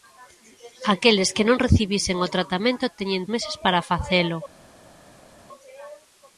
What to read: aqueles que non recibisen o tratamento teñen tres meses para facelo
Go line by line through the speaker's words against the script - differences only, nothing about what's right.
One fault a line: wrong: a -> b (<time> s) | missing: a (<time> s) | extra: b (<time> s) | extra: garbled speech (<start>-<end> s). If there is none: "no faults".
missing: tres (3.2 s)